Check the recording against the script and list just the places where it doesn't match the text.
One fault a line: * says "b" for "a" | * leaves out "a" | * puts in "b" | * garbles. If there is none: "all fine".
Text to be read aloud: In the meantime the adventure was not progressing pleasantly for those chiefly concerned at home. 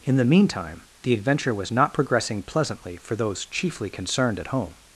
all fine